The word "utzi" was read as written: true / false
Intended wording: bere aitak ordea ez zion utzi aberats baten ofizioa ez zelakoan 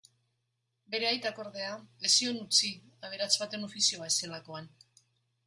true